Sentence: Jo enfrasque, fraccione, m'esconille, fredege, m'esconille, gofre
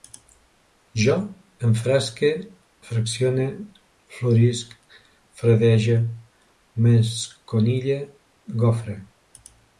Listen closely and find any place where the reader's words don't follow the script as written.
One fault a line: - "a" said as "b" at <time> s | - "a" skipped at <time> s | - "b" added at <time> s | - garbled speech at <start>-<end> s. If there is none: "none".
- "m'esconille" said as "florisc" at 4.2 s